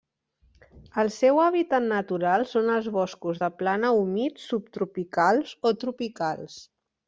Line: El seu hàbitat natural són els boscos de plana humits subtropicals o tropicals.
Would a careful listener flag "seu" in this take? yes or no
no